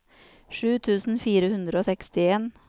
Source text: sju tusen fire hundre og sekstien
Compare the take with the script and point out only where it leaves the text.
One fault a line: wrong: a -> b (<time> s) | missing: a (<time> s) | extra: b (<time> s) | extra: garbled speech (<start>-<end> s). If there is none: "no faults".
no faults